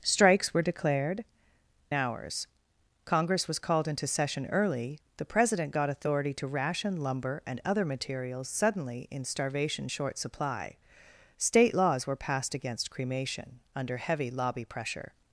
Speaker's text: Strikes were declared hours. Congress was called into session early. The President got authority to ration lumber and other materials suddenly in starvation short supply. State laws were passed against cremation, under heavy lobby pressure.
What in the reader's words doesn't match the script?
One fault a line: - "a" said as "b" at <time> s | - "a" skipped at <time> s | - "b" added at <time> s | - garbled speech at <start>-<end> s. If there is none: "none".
none